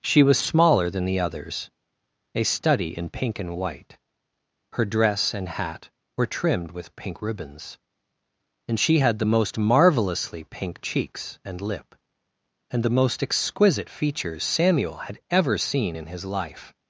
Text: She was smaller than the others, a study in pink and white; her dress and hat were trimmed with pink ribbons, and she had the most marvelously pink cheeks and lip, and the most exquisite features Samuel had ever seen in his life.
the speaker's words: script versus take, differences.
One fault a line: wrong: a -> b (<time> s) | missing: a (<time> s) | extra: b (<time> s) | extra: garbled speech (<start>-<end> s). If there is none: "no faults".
no faults